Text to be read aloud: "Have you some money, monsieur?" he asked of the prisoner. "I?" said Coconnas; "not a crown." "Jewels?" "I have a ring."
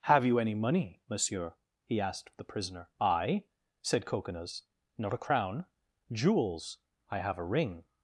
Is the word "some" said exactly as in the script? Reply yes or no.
no